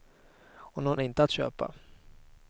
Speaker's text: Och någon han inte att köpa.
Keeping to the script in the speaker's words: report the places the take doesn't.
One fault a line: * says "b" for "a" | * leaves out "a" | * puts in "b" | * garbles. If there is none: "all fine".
all fine